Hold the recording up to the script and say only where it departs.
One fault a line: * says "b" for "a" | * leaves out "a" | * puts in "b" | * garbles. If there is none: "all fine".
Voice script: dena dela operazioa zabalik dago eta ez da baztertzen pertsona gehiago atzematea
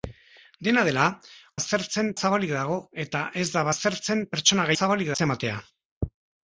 * says "baztertzen" for "operazioa"
* says "zabalik" for "gehiago"